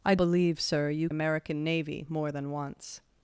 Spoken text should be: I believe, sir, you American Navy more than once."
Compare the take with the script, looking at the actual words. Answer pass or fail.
pass